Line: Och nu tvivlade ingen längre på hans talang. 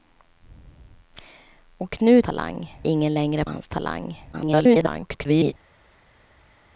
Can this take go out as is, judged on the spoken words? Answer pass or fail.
fail